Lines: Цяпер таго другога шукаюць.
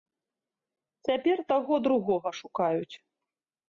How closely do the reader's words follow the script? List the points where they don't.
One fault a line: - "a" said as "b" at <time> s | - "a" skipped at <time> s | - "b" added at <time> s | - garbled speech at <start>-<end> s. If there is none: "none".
none